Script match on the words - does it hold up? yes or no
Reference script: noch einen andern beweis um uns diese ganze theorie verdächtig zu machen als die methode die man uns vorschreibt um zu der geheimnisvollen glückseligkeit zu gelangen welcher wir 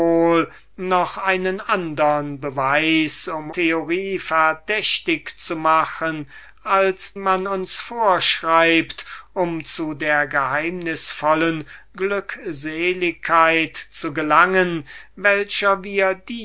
no